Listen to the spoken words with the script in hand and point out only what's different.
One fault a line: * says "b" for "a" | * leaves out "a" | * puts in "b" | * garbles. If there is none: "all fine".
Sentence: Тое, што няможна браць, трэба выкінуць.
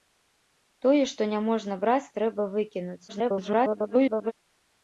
* garbles